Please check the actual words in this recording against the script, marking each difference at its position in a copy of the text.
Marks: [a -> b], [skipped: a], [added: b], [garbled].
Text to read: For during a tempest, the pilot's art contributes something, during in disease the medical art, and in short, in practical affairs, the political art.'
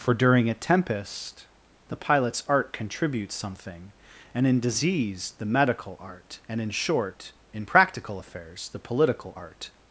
For during a tempest, the pilot's art contributes something, [during -> and] in disease the medical art, and in short, in practical affairs, the political art.'